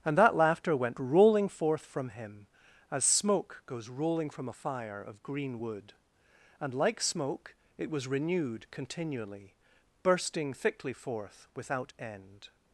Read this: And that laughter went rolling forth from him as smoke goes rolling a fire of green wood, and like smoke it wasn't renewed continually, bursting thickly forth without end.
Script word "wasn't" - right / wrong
wrong